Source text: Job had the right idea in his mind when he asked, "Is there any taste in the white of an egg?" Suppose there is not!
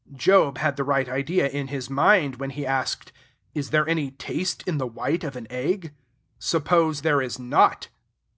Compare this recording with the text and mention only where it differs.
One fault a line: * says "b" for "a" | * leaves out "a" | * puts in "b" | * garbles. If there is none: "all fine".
all fine